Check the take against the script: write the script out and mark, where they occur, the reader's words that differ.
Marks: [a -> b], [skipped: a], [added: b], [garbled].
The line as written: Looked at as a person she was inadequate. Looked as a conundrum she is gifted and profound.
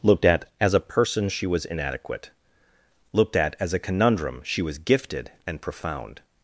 Looked at as a person she was inadequate. Looked [added: at] as a conundrum she [is -> was] gifted and profound.